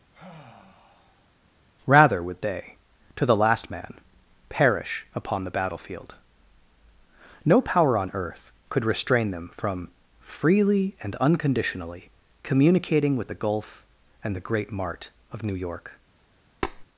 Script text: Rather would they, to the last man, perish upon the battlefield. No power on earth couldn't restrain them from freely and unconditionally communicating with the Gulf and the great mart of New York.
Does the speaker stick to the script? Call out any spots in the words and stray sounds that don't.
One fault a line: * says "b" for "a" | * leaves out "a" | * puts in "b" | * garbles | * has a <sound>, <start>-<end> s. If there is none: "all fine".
* has a sigh, 0.1-1.3 s
* says "could" for "couldn't"
* has a tap, 16.6-16.8 s